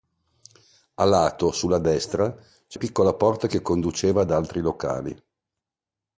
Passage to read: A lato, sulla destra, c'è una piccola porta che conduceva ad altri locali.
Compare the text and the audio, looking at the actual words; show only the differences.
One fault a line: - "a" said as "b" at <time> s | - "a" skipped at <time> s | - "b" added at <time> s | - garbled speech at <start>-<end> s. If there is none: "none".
- "una" skipped at 2.8 s